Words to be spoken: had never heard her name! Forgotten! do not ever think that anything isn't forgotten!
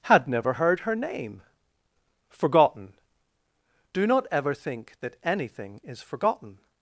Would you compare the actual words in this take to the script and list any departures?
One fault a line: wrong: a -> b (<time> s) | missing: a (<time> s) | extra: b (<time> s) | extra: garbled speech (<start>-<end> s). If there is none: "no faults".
wrong: isn't -> is (5.8 s)